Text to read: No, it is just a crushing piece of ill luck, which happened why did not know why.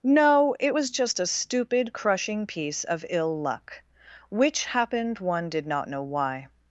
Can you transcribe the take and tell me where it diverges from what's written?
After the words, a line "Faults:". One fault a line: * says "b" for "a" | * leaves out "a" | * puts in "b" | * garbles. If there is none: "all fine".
No, it was just a stupid, crushing piece of ill luck, which happened one did not know why.
Faults:
* says "was" for "is"
* puts in "stupid"
* says "one" for "why"